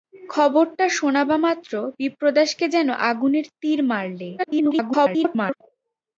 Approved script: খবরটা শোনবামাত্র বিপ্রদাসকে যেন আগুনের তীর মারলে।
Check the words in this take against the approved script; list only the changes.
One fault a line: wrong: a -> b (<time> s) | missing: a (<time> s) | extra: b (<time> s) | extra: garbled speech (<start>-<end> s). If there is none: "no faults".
extra: garbled speech (4.4-5.6 s)